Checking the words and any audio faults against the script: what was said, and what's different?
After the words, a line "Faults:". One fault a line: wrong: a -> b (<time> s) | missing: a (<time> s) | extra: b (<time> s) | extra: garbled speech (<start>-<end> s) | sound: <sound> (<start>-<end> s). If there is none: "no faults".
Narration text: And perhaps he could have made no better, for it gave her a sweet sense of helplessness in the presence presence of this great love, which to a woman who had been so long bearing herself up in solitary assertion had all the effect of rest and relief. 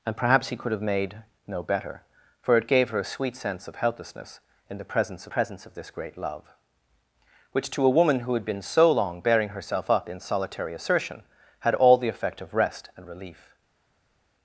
And perhaps he could have made no better, for it gave her a sweet sense of helplessness in the presence presence of this great love, which to a woman who had been so long bearing herself up in solitary assertion had all the effect of rest and relief.
Faults:
no faults